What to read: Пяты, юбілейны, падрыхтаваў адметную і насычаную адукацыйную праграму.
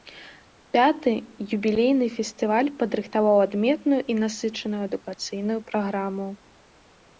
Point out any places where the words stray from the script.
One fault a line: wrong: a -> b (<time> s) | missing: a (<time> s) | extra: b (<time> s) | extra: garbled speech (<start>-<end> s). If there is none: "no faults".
extra: фестываль (2.1 s)